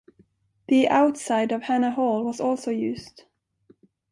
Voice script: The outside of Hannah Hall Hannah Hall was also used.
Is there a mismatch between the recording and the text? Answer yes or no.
yes